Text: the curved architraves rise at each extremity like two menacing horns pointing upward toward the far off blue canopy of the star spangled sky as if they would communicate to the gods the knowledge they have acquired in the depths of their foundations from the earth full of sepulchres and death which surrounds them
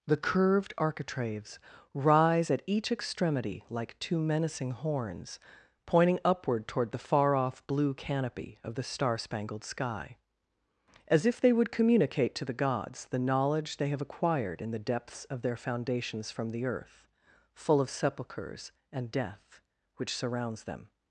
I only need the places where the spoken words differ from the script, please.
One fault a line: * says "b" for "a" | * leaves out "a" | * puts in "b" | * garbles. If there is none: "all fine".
all fine